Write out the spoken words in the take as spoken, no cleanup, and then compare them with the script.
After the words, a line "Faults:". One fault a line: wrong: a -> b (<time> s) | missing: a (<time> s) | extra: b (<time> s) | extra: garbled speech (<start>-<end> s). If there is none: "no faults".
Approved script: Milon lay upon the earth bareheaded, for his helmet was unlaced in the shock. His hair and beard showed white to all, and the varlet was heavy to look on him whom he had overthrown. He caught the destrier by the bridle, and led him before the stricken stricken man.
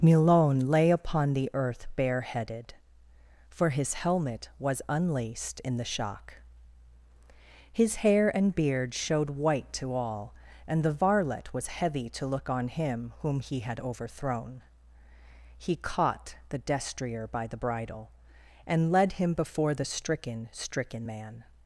Milon lay upon the earth bareheaded, for his helmet was unlaced in the shock. His hair and beard showed white to all, and the varlet was heavy to look on him whom he had overthrown. He caught the destrier by the bridle, and led him before the stricken stricken man.
Faults:
no faults